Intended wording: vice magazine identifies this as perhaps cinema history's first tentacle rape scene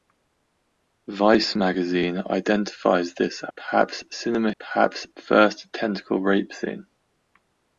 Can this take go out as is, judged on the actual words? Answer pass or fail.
fail